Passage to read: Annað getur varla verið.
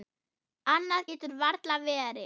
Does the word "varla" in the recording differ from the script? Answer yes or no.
no